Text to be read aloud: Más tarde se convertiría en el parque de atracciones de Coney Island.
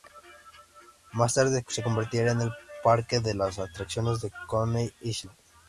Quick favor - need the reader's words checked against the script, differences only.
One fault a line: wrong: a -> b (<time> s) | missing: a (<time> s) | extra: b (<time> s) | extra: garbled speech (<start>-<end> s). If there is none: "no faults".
no faults